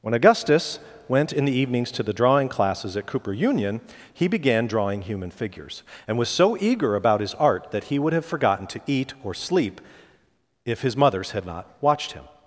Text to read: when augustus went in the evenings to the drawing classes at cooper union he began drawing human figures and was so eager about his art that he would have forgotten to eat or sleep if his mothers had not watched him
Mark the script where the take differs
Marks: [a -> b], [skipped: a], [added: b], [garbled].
when augustus went in the evenings to the drawing classes at cooper union he began drawing human figures and was so eager about his art that he would have forgotten to eat or sleep if his mothers had not watched him